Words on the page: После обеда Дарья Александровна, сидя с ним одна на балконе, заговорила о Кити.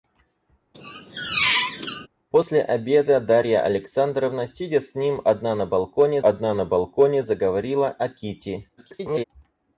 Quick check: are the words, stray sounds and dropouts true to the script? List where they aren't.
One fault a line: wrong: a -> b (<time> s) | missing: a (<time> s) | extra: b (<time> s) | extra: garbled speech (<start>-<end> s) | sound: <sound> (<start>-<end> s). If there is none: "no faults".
sound: squeak (0.7-2.1 s)
extra: одна на балконе (6.2 s)
extra: garbled speech (8.8-9.2 s)